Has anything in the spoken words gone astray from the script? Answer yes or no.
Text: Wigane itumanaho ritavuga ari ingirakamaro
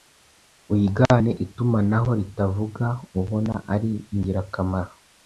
yes